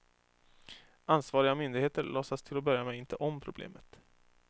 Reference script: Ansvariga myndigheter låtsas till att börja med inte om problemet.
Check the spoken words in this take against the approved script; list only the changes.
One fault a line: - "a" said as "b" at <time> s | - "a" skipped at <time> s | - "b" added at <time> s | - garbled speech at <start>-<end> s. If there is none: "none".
none